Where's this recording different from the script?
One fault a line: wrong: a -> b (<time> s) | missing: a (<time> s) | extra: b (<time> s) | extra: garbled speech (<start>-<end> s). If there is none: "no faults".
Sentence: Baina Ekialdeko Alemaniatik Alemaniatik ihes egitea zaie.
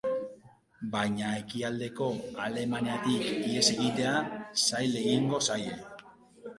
missing: Alemaniatik (3.3 s)
extra: zail egingo (4.6 s)